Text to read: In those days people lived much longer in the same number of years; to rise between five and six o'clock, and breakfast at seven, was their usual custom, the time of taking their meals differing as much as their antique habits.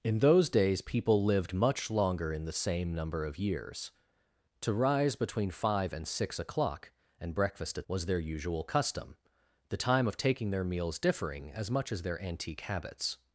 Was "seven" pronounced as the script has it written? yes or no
no